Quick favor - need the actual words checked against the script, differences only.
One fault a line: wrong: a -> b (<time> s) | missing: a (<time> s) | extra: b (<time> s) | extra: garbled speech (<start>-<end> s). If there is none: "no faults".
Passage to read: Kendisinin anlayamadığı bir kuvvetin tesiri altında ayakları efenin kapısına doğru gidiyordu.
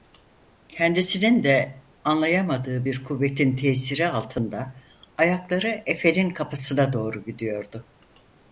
extra: de (1.4 s)